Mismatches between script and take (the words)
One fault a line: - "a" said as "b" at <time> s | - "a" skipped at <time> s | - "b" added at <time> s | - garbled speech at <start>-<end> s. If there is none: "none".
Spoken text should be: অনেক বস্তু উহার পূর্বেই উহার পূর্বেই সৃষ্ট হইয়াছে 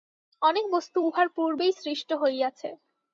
- "উহার পূর্বেই" skipped at 1.7 s